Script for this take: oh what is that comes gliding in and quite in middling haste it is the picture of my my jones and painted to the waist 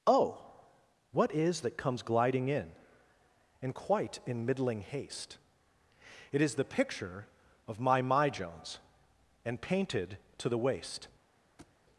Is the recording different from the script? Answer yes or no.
no